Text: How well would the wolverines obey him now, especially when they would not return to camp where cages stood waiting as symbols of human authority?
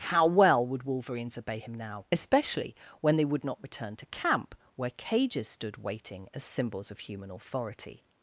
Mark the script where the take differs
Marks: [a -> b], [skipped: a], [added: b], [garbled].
How well would [skipped: the] wolverines obey him now, especially when they would not return to camp where cages stood waiting as symbols of human authority?